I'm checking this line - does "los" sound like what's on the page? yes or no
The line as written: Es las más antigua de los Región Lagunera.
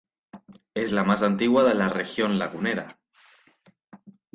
no